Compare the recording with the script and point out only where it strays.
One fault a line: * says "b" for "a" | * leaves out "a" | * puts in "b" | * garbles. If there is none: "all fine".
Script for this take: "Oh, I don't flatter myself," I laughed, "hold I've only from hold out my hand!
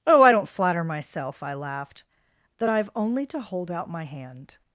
* says "that" for "hold"
* says "to" for "from"